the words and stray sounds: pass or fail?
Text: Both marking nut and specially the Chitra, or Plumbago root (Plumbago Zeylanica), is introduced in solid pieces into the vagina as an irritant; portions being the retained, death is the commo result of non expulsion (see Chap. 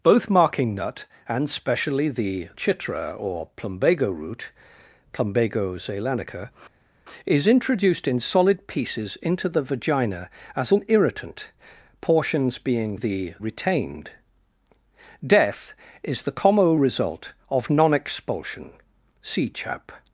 pass